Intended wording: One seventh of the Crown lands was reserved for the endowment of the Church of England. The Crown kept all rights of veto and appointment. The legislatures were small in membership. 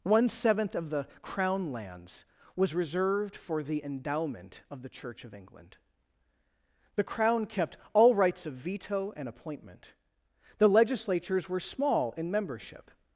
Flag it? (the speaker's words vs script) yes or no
no